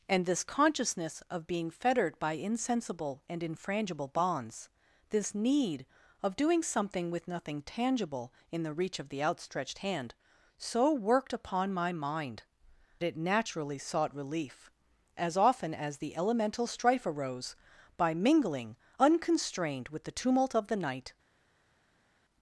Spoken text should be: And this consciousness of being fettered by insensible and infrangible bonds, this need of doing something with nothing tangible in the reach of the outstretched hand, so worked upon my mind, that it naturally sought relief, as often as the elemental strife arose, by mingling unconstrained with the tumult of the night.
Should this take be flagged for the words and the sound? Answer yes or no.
yes